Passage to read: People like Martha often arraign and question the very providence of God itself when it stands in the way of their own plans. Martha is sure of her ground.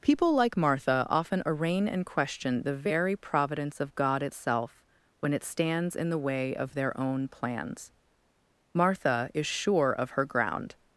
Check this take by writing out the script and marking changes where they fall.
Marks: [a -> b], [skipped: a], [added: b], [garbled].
People like Martha often arraign and question the very providence of God itself when it stands in the way of their own plans. Martha is sure of her ground.